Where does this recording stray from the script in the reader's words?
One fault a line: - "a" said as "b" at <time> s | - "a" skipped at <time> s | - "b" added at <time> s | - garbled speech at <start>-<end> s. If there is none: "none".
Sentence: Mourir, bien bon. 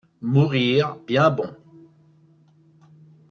none